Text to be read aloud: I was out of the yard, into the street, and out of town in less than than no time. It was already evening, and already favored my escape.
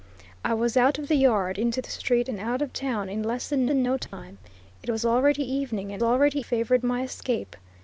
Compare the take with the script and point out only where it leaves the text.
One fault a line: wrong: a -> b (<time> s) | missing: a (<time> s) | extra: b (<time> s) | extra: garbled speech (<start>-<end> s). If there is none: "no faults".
no faults